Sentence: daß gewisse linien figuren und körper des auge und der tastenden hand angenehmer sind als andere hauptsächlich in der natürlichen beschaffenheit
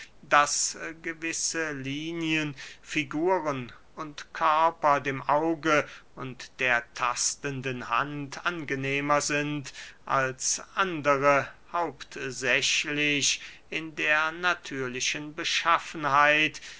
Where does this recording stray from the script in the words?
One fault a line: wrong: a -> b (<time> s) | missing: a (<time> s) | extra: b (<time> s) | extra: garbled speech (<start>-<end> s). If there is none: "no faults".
wrong: des -> dem (5.0 s)